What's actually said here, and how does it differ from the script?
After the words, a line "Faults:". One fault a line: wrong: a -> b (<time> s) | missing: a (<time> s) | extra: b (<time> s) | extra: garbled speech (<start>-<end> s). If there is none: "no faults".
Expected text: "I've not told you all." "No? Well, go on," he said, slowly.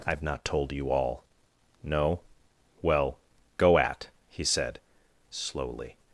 "I've not told you all." "No? Well, go at," he said, slowly.
Faults:
wrong: on -> at (3.8 s)